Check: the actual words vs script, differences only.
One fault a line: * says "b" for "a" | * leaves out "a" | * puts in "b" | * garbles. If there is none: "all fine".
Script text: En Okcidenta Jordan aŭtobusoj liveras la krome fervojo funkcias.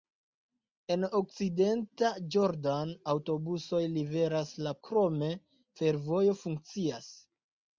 all fine